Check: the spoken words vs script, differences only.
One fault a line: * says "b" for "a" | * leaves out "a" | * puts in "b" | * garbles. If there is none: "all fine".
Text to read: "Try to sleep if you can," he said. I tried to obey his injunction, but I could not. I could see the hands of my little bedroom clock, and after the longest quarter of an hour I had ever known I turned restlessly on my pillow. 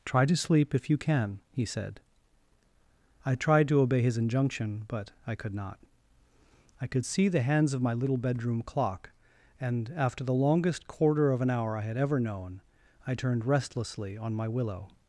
* says "willow" for "pillow"